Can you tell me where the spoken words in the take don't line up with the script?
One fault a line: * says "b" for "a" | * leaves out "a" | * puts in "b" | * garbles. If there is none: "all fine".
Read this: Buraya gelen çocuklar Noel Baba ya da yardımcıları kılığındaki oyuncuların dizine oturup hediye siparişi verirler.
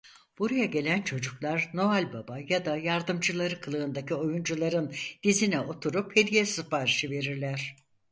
all fine